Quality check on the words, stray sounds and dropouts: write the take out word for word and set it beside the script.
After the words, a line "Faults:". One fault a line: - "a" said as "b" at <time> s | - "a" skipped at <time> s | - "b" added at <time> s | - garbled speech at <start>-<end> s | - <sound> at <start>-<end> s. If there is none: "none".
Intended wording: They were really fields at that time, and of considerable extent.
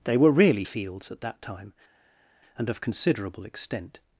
They were really fields at that time, and of considerable extent.
Faults:
none